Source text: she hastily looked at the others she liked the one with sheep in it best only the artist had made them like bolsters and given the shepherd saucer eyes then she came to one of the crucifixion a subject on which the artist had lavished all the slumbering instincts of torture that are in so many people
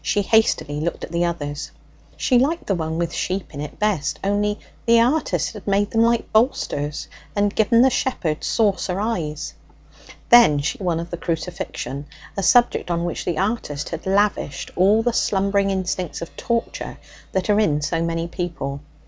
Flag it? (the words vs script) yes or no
yes